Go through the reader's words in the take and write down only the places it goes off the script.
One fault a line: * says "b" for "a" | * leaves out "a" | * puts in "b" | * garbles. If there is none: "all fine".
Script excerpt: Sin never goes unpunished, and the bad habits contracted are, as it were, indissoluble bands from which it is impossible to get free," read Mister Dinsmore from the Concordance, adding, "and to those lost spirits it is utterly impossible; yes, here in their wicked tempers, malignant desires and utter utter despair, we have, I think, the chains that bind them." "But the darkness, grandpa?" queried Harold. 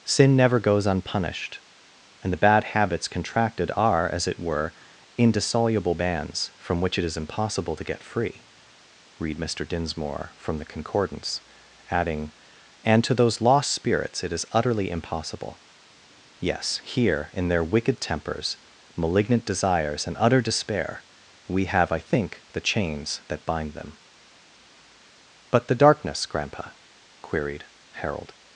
* leaves out "utter"